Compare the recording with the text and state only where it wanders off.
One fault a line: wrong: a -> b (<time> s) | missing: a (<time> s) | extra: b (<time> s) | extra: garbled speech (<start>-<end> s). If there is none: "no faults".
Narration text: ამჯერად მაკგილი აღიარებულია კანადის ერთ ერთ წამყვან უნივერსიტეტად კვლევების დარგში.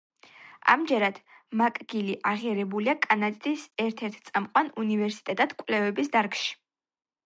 no faults